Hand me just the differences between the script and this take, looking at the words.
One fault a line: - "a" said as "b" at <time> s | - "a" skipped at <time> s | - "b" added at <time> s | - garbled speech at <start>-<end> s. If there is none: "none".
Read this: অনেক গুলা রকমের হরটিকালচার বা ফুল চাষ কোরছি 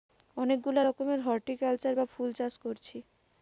none